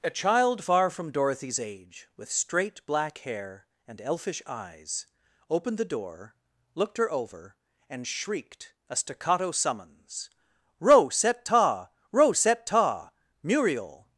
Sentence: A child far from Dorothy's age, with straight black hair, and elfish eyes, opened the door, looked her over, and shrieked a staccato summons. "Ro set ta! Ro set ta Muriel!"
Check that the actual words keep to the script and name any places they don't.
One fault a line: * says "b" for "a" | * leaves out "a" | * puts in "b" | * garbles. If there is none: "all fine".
all fine